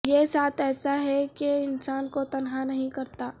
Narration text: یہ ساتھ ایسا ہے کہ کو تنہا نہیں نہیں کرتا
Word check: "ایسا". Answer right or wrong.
right